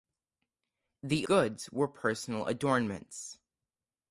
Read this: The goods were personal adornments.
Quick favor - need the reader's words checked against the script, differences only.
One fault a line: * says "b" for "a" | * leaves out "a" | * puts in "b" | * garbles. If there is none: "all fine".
all fine